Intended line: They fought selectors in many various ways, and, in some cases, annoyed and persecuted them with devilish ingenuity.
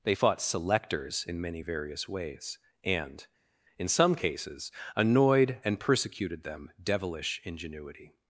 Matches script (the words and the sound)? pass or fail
fail